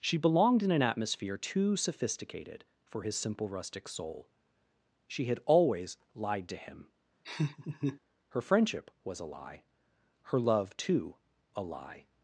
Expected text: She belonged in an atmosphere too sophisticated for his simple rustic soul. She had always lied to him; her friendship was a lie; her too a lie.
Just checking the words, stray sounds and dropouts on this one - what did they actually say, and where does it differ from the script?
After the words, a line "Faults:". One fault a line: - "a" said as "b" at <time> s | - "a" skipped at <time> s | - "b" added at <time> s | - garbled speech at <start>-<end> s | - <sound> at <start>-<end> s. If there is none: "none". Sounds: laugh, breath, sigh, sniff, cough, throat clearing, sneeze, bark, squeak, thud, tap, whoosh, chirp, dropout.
She belonged in an atmosphere too sophisticated for his simple rustic soul. She had always lied to him; her friendship was a lie; her love, too a lie.
Faults:
- laugh at 7.2-8.0 s
- "love" added at 10.4 s